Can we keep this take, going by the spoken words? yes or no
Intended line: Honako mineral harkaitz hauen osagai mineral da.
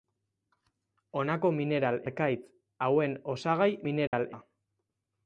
yes